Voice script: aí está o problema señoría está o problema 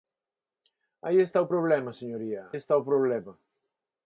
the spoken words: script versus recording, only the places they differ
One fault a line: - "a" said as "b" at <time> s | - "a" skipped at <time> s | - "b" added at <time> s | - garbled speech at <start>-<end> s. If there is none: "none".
none